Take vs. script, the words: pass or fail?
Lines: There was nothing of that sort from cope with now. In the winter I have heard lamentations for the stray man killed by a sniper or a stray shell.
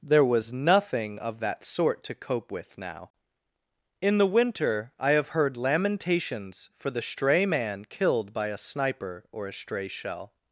fail